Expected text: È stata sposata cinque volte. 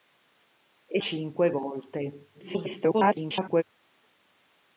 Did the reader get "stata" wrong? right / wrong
wrong